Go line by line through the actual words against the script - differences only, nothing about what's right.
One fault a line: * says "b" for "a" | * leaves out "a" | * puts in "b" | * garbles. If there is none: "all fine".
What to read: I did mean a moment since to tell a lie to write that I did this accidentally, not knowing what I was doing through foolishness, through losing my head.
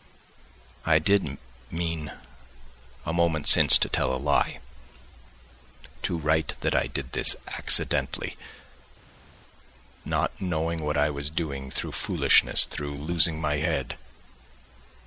all fine